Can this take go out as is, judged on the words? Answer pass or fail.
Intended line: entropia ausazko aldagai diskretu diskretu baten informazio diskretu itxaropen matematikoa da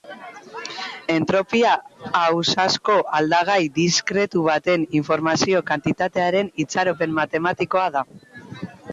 fail